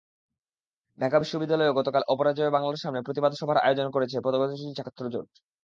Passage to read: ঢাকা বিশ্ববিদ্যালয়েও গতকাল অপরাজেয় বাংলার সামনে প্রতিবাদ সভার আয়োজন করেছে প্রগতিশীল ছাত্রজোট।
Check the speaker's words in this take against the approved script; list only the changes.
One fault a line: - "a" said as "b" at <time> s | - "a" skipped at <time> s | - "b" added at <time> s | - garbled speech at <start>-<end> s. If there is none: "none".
none